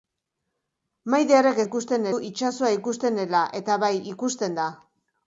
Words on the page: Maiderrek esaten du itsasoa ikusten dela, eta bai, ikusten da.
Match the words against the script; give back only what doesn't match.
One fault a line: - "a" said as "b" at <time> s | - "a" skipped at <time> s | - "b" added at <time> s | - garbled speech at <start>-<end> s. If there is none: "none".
- "esaten" said as "ikusten" at 1.7 s